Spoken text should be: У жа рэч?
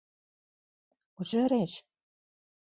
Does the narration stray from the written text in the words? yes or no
no